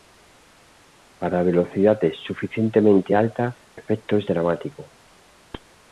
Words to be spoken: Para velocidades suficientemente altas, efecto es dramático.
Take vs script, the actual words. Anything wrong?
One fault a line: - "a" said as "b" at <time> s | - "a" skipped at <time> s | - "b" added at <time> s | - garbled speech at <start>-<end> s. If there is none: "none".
none